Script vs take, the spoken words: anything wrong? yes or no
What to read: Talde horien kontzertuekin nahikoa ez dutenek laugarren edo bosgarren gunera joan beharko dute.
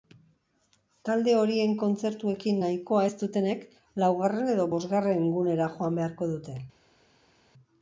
no